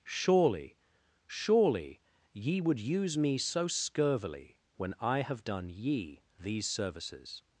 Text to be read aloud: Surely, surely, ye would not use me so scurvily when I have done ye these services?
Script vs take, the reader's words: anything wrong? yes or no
yes